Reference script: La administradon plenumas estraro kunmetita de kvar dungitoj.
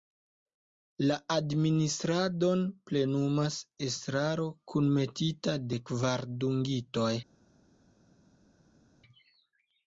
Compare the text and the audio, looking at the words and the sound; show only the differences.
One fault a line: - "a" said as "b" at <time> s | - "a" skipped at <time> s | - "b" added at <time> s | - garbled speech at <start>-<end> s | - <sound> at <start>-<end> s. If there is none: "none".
none